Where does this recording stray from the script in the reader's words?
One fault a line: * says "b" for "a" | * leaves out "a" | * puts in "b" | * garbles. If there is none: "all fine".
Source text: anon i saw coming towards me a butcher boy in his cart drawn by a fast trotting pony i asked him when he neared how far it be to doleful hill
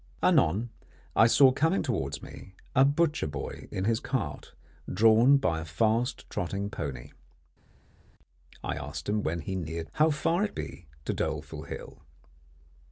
all fine